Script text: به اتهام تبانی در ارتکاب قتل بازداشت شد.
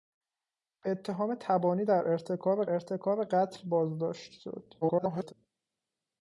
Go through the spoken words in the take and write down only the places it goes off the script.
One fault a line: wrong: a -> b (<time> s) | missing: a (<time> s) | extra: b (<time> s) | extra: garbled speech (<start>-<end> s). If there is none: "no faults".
extra: ارتکاب (2.7 s)
extra: garbled speech (4.8-5.3 s)